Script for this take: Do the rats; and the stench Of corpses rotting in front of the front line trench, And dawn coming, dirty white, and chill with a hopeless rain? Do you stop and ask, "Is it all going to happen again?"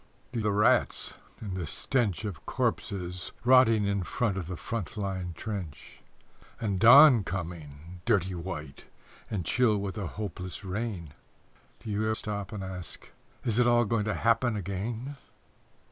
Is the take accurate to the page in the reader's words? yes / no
yes